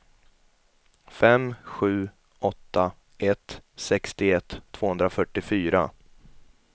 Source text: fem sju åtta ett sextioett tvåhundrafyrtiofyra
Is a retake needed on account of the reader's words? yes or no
no